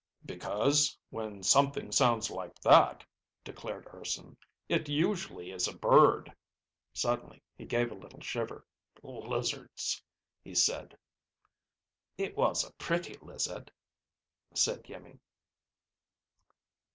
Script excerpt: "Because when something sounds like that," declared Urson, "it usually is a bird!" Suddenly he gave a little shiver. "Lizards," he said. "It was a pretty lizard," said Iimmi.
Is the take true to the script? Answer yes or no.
yes